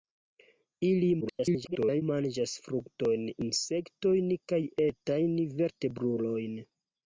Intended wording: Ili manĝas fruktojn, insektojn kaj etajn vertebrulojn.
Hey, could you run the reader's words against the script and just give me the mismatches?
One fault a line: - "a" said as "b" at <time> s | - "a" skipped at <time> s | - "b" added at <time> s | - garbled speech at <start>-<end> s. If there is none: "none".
- garbled speech at 1.2-2.0 s